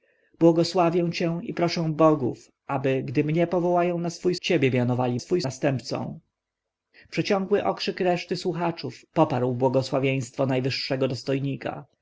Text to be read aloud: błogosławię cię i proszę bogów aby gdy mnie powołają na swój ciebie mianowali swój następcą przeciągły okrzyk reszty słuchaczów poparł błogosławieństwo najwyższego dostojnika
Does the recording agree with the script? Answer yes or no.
yes